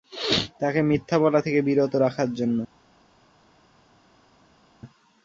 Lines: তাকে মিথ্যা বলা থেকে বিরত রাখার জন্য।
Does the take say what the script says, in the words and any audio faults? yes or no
yes